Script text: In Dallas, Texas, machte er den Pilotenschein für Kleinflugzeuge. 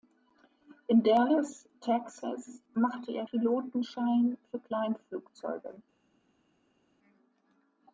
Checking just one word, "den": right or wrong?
wrong